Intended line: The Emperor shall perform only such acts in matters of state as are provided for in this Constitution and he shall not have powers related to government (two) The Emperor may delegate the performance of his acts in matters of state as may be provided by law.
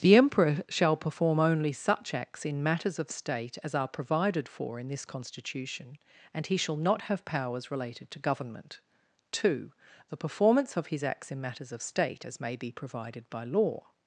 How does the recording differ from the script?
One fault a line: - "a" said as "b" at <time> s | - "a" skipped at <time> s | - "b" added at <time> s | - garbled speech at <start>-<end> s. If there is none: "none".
- "Emperor may delegate the" skipped at 10.2 s